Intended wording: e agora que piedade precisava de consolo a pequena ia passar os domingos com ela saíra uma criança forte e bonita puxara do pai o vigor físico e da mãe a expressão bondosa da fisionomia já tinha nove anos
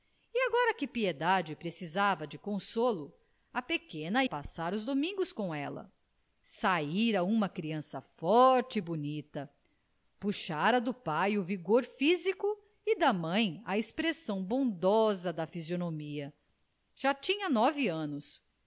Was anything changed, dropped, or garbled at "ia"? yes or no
yes